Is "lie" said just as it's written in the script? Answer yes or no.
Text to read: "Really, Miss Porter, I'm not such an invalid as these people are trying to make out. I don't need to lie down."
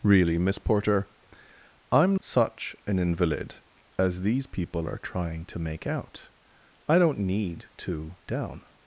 no